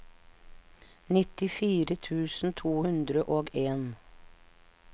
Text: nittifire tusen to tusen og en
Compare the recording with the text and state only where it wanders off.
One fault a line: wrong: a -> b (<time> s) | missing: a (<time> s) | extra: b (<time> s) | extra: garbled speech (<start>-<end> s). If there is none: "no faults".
wrong: tusen -> hundre (2.8 s)